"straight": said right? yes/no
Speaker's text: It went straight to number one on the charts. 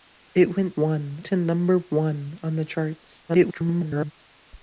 no